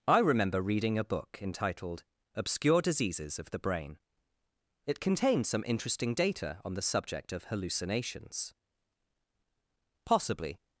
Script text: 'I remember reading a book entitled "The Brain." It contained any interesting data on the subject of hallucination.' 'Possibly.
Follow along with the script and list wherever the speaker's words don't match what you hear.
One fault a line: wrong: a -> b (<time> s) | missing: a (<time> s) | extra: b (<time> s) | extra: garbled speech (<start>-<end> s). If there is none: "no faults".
extra: Obscure Diseases of (2.3 s)
wrong: any -> some (5.5 s)
wrong: hallucination -> hallucinations (7.5 s)